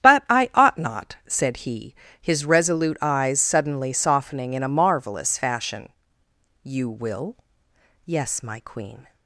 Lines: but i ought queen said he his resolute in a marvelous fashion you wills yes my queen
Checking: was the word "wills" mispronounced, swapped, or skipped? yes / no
yes